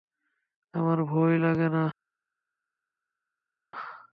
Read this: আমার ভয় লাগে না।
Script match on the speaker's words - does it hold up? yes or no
yes